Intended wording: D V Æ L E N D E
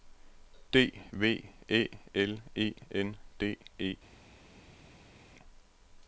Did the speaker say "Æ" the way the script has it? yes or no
yes